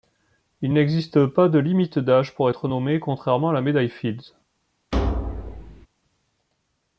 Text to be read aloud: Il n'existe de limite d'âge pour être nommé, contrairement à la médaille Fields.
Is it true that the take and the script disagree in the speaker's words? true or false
true